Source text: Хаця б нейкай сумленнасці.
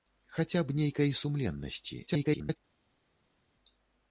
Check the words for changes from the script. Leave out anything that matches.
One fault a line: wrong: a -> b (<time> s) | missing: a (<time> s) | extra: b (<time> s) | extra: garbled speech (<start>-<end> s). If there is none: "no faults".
extra: garbled speech (2.1-2.6 s)